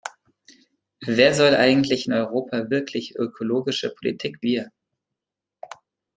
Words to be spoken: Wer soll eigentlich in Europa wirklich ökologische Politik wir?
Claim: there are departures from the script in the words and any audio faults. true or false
false